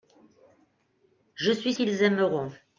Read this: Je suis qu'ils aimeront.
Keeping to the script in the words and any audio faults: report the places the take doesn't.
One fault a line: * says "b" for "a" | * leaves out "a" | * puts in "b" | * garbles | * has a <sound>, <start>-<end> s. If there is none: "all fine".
all fine